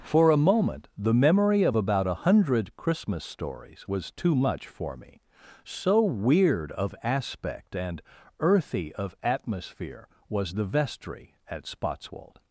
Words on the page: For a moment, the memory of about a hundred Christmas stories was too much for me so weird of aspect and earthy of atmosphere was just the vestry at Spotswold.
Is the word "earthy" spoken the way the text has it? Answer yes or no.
yes